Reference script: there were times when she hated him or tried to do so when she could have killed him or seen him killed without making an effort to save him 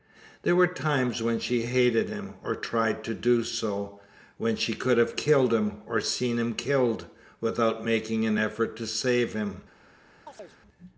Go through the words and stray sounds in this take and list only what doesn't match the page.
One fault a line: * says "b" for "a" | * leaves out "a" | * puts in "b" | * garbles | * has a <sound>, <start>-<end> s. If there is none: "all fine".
* has a chirp, 10.3-10.6 s